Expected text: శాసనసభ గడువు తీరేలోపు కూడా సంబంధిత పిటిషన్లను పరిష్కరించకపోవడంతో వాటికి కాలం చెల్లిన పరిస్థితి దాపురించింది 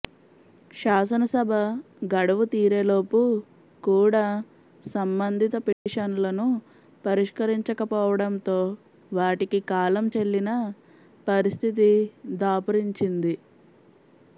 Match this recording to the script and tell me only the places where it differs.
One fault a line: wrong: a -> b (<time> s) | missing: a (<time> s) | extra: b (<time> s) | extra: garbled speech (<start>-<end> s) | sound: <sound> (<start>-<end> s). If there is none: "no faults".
sound: dropout (5.7-5.9 s)